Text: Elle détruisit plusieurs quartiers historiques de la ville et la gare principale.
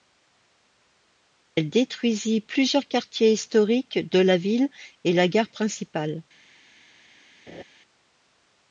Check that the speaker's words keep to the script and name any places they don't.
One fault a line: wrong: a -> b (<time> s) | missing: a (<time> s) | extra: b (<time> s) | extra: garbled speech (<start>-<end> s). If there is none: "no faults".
no faults